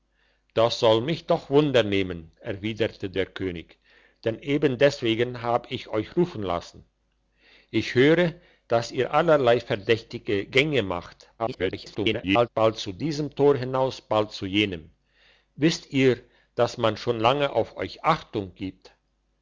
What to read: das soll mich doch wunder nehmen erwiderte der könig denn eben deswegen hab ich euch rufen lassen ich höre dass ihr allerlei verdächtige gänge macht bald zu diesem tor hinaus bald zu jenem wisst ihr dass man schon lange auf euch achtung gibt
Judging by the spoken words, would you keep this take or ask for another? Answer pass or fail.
fail